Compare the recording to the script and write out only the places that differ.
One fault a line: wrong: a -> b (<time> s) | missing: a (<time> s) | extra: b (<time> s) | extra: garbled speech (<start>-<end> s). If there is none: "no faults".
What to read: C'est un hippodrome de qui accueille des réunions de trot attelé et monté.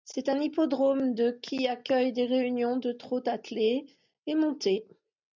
no faults